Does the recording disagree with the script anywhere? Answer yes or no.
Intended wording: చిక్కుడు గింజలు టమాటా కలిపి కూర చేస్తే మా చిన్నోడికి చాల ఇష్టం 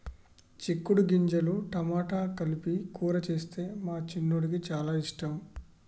no